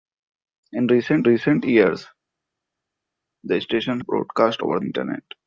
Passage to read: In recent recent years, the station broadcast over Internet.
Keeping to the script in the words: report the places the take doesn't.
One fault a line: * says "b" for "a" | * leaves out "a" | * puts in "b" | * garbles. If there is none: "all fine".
all fine